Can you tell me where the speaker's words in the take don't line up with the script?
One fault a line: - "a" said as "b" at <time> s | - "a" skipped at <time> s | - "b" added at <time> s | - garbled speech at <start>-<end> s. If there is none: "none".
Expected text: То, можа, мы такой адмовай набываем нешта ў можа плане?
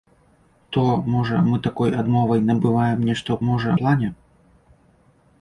none